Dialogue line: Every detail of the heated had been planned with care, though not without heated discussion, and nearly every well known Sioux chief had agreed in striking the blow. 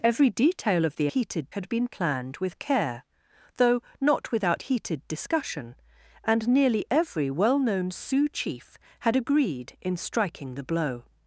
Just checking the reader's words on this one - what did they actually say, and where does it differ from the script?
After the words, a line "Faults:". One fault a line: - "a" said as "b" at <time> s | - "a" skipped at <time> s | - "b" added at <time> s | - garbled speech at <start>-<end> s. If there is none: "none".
Every detail of the heated had been planned with care, though not without heated discussion, and nearly every well known Sioux chief had agreed in striking the blow.
Faults:
none